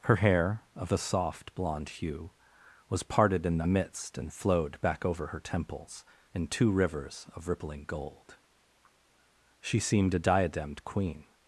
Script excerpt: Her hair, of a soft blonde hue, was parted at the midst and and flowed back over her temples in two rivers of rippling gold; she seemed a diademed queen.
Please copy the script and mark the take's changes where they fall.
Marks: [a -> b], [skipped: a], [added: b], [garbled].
Her hair, of a soft blonde hue, was parted [at -> in] the midst and [skipped: and] flowed back over her temples in two rivers of rippling gold; she seemed a diademed queen.